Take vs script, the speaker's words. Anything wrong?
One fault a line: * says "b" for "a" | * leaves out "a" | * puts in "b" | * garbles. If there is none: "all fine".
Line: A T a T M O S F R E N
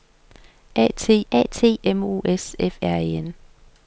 all fine